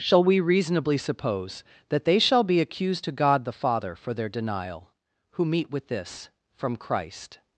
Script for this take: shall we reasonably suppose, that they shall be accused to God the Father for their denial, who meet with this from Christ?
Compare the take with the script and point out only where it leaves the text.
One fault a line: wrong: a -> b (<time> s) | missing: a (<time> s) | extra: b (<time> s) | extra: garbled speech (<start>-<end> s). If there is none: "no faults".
no faults